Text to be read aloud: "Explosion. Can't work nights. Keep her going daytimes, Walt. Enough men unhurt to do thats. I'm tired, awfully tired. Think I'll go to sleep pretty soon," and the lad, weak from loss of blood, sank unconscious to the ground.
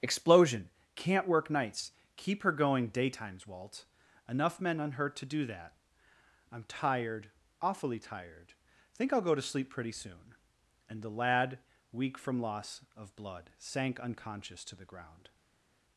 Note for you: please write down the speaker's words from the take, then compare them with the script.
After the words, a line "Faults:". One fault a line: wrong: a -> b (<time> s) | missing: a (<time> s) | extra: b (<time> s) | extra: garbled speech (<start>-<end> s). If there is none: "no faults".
"Explosion. Can't work nights. Keep her going daytimes, Walt. Enough men unhurt to do that. I'm tired, awfully tired. Think I'll go to sleep pretty soon," and the lad, weak from loss of blood, sank unconscious to the ground.
Faults:
wrong: thats -> that (5.5 s)